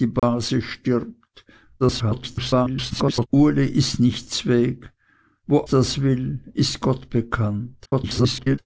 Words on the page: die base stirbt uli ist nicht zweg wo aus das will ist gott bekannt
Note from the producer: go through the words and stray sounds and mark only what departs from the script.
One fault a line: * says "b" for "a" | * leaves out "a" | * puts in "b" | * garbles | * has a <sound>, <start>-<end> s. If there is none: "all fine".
* has a dropout, 0.2-0.2 s
* garbles
* leaves out "aus"
* garbles